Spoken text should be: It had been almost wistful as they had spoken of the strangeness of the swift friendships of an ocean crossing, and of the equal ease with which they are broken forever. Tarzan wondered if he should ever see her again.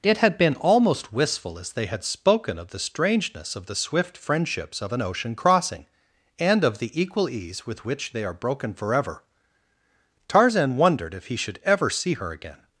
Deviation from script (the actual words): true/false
false